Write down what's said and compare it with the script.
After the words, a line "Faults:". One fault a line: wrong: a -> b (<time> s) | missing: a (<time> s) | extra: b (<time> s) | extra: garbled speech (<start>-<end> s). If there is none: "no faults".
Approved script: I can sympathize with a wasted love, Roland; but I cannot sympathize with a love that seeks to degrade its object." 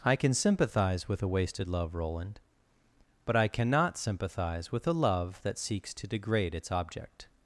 I can sympathize with a wasted love, Roland; but I cannot sympathize with a love that seeks to degrade its object."
Faults:
no faults